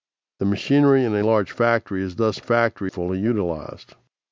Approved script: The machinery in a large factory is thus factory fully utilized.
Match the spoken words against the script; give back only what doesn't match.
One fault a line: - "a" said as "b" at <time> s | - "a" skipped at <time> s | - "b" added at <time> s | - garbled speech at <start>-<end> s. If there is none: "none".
none